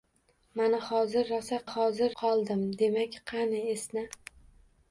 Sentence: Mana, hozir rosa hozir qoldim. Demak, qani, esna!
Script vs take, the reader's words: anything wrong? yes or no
no